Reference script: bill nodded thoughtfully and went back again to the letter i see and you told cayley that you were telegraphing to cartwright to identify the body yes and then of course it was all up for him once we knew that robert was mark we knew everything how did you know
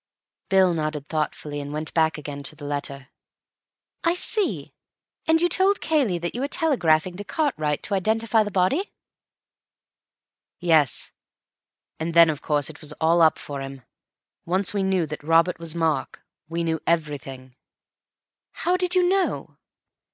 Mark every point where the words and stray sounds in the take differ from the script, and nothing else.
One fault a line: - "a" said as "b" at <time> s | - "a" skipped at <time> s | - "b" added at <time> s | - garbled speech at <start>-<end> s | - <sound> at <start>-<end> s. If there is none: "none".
none